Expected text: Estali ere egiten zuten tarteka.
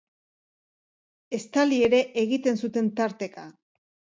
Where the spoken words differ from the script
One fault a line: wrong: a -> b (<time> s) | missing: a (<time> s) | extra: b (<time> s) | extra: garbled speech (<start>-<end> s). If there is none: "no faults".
no faults